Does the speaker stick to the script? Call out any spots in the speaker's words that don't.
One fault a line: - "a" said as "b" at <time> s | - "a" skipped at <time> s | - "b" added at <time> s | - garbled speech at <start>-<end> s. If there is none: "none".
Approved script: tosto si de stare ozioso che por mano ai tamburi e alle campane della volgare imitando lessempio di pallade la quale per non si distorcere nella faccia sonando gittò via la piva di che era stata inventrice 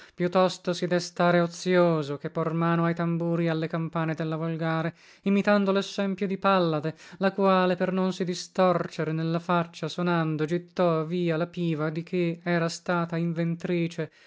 none